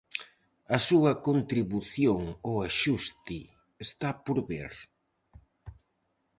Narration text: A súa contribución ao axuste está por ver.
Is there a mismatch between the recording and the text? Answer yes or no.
no